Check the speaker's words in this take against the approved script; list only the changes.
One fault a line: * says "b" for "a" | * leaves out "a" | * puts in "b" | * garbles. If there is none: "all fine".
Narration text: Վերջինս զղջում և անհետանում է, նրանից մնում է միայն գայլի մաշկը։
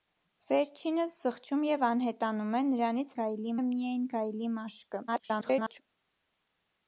* says "գայլի" for "մնում"
* garbles